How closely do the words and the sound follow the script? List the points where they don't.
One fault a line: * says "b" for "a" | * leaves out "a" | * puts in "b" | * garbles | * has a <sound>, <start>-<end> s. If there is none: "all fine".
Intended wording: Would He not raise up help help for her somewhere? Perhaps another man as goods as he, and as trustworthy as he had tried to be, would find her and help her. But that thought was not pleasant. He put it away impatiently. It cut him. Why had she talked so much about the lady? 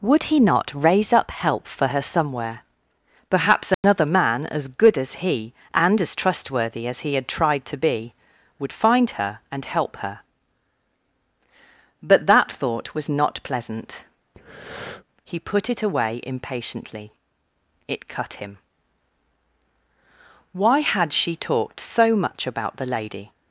* leaves out "help"
* has a dropout, 3.7-3.8 s
* says "good" for "goods"
* has a breath, 14.3-15.0 s